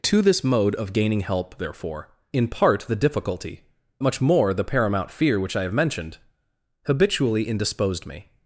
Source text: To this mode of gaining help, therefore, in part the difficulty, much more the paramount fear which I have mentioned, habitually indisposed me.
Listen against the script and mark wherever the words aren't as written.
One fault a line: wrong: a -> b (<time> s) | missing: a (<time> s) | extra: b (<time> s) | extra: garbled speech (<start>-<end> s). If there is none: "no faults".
no faults